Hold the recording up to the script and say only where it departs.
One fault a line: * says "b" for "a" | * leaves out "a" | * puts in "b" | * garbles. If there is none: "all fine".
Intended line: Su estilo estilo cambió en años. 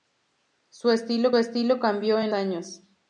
all fine